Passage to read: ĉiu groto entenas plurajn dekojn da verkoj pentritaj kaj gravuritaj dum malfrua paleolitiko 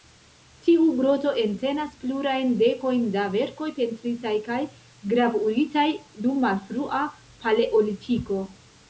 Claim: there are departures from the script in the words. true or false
true